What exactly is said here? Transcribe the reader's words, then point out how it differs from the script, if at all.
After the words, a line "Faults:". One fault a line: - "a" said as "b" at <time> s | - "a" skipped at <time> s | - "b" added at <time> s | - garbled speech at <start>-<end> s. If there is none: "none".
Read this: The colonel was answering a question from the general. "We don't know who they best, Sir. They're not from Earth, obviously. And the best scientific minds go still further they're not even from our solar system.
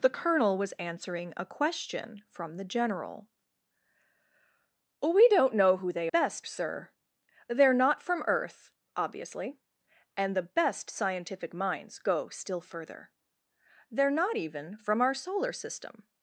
The colonel was answering a question from the general. "We don't know who they best, Sir. They're not from Earth, obviously. And the best scientific minds go still further they're not even from our solar system.
Faults:
none